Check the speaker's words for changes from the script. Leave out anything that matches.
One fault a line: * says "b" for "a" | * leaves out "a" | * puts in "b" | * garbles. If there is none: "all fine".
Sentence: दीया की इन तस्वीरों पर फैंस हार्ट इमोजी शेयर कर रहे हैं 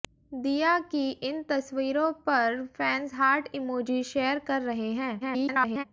* garbles